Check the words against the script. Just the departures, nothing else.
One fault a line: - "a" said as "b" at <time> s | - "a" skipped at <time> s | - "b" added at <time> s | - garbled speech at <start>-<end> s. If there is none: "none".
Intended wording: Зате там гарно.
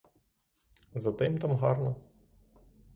- "їм" added at 1.2 s